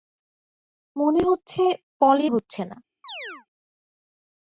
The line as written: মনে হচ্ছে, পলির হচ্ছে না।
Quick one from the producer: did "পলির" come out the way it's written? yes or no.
yes